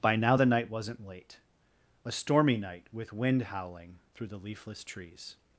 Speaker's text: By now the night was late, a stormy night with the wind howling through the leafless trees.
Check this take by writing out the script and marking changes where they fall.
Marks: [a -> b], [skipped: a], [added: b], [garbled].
By now the night [was -> wasn't] late, a stormy night with [skipped: the] wind howling through the leafless trees.